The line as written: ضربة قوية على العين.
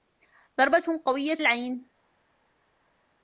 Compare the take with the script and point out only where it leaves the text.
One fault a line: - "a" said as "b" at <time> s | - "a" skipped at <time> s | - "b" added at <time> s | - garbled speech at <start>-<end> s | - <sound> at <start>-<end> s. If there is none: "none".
- "على" skipped at 1.4 s